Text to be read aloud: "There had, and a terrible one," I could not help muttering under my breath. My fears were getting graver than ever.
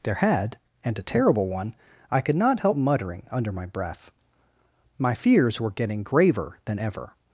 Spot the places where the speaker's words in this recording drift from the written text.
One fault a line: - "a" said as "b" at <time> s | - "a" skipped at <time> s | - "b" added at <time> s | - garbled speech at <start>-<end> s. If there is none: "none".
none